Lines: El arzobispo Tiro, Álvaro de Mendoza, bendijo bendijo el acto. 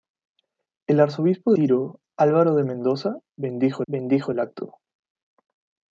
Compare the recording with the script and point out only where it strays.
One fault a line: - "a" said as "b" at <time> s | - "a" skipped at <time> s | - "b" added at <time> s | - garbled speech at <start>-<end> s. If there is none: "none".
none